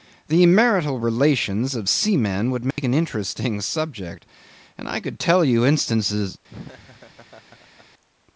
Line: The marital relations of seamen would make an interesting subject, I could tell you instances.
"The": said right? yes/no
yes